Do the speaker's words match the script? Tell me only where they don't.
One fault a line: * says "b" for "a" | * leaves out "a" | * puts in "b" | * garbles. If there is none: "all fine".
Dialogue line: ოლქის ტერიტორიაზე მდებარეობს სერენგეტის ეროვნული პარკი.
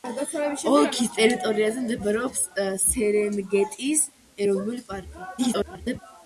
* garbles